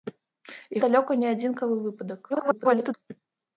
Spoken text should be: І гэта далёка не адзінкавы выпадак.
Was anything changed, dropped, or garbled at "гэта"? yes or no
yes